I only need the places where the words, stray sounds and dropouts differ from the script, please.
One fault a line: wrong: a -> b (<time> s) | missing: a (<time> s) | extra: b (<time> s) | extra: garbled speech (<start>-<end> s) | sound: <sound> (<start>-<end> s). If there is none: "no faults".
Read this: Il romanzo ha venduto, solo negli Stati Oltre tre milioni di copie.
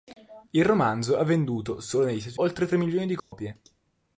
sound: dropout (3.2-3.3 s)